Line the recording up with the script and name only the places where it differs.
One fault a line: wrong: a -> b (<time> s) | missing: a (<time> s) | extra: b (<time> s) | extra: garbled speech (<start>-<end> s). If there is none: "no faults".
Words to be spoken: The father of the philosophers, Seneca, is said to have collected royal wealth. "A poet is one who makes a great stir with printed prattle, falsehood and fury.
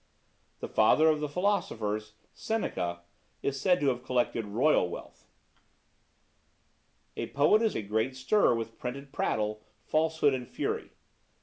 missing: one who makes (7.8 s)